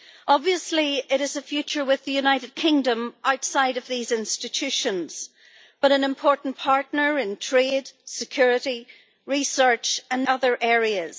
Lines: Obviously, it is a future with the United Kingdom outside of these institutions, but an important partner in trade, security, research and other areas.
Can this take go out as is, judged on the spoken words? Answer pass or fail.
pass